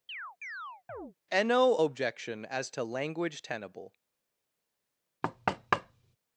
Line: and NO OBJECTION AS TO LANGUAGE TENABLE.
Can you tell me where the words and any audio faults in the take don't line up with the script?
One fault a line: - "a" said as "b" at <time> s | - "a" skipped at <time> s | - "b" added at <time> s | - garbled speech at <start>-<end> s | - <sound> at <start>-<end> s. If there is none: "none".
- chirp at 0.1-1.1 s
- thud at 5.2-6.2 s